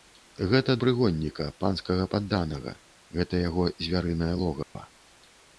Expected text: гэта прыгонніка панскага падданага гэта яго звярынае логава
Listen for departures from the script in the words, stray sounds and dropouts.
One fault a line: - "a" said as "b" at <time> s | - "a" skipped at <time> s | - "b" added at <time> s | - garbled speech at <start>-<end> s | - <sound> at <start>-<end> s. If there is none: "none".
- dropout at 4.6-4.8 s